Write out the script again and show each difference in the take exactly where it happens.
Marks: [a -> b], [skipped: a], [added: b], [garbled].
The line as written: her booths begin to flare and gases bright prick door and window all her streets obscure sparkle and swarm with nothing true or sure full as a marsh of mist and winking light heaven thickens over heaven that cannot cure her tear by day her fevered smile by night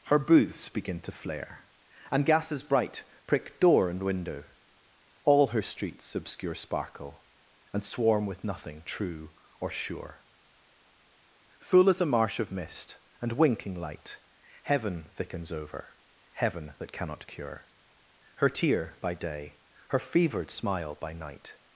her booths begin to flare and gases bright prick door and window all her streets obscure sparkle and swarm with nothing true or sure full as a marsh of mist and winking light heaven thickens over heaven that cannot cure her tear by day her fevered smile by night